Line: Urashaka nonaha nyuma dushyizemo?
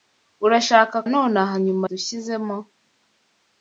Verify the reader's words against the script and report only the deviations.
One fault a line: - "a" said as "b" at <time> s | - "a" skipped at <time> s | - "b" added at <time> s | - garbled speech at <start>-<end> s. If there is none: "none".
none